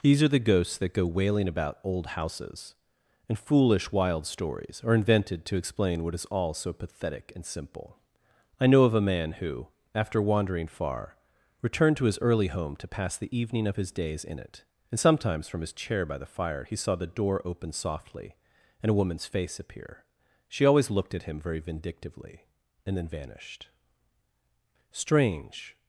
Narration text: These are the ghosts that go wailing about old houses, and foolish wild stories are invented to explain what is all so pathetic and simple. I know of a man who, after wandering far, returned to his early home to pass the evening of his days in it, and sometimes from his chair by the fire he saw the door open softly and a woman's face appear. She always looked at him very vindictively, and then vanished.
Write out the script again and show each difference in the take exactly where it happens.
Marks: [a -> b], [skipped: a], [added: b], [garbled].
These are the ghosts that go wailing about old houses, and foolish wild stories are invented to explain what is all so pathetic and simple. I know of a man who, after wandering far, returned to his early home to pass the evening of his days in it, and sometimes from his chair by the fire he saw the door open softly and a woman's face appear. She always looked at him very vindictively, and then vanished. [added: Strange]